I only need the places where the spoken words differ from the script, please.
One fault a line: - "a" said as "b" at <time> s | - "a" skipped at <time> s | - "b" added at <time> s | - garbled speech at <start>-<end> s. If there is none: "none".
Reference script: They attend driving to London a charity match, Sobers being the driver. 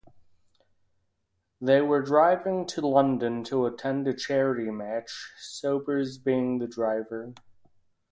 - "attend" said as "were" at 1.8 s
- "to attend" added at 3.4 s